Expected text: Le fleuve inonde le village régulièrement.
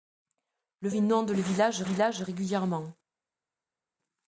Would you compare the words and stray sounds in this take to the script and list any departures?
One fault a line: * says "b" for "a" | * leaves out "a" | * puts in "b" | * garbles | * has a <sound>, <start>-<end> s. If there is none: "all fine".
* leaves out "fleuve"
* puts in "village"